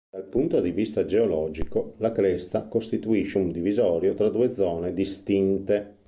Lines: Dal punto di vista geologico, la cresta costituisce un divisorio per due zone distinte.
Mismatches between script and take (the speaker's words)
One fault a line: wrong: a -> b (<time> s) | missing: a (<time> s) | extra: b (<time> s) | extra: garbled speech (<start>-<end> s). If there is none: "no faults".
wrong: per -> tra (4.1 s)